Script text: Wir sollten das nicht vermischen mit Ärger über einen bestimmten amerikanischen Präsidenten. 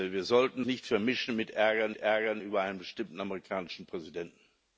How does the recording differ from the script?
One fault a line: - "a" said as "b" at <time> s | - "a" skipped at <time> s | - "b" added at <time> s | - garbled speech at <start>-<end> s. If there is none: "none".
- "das" skipped at 0.6 s
- "Ärger" added at 2.0 s